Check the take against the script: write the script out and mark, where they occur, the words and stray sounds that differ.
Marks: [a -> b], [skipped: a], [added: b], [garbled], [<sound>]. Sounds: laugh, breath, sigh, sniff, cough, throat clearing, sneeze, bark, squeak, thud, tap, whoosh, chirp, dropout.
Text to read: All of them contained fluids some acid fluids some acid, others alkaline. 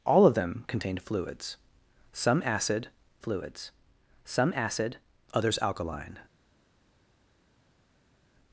All of them contained fluids some acid fluids some acid, others alkaline.